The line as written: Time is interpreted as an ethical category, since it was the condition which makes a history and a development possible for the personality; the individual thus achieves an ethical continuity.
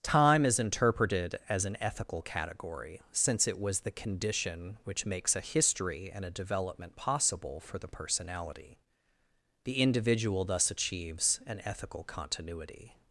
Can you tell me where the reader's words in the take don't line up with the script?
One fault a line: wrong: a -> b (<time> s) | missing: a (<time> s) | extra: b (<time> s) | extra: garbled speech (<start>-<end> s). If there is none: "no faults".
no faults